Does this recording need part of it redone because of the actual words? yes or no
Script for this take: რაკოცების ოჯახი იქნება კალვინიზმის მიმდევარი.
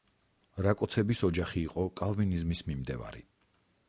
yes